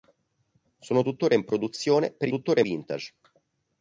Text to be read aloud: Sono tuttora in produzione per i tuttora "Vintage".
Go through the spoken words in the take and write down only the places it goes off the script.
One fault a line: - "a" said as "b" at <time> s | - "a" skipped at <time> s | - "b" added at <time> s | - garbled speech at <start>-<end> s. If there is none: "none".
none